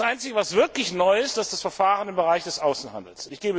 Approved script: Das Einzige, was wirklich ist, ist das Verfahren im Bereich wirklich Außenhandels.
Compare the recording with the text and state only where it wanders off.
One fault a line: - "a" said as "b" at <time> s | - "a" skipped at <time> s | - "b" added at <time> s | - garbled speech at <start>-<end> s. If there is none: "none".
- "neu" added at 0.9 s
- "wirklich" said as "des" at 2.4 s